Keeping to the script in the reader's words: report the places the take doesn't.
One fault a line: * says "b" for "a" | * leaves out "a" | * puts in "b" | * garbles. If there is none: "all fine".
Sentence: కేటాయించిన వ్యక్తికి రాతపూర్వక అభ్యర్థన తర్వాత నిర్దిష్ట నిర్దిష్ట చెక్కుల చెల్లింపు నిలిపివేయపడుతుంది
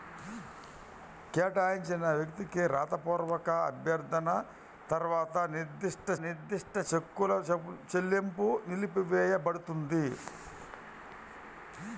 all fine